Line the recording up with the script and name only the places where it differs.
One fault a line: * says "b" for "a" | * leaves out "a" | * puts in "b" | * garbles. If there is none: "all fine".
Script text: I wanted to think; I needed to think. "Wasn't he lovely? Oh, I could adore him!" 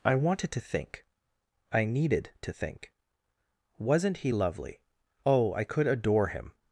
all fine